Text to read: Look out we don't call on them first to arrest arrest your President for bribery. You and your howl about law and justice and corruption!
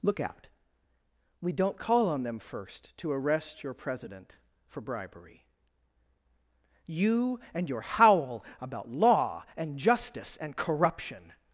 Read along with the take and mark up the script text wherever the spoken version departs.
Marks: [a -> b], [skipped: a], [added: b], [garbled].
Look out we don't call on them first to arrest [skipped: arrest] your President for bribery. You and your howl about law and justice and corruption!